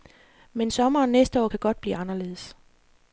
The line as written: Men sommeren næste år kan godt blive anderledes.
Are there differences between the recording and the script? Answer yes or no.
no